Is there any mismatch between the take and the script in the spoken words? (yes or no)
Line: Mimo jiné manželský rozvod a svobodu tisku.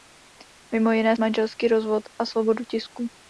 no